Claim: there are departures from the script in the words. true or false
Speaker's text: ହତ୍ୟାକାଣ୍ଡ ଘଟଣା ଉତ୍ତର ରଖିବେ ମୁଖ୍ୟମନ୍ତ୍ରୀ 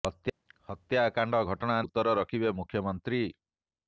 false